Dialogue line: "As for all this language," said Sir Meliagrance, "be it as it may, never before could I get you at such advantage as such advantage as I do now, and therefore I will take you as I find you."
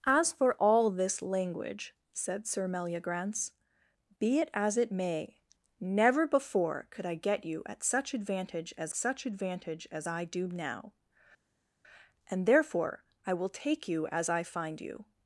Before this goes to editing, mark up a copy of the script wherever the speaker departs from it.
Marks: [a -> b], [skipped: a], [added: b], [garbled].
"As for all this language," said Sir Meliagrance, "be it as it may, never before could I get you at such advantage as such advantage as I do now, and therefore I will take you as I find you."